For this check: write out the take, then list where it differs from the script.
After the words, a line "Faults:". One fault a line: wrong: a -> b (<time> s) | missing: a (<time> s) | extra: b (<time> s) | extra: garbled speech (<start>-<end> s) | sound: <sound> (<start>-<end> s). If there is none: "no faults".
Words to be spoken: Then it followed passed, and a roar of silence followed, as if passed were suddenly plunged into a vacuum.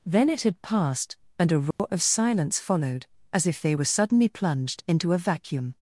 Then it had passed, and a roar of silence followed, as if they were suddenly plunged into a vacuum.
Faults:
wrong: followed -> had (0.4 s)
sound: dropout (1.7-1.8 s)
wrong: passed -> they (3.6 s)